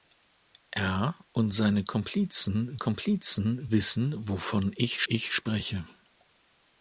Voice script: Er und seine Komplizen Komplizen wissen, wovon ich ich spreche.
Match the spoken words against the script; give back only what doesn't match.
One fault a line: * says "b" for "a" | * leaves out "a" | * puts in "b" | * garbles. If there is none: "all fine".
all fine